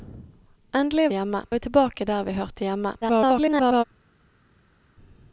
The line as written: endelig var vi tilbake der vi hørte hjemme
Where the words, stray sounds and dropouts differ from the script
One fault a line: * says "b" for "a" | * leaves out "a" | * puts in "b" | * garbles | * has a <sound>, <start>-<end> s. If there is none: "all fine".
* says "hjemme" for "var"
* garbles